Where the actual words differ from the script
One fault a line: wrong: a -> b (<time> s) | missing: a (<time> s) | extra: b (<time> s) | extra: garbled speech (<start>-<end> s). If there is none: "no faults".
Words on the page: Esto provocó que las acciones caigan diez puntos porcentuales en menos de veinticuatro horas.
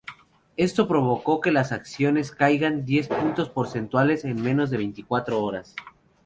no faults